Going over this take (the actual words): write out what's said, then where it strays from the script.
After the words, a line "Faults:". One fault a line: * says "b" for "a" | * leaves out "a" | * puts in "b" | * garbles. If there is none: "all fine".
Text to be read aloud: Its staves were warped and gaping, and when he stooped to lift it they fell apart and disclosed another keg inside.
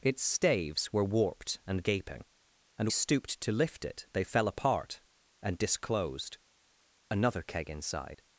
Its staves were warped and gaping, and stooped to lift it they fell apart and disclosed another keg inside.
Faults:
* leaves out "when he"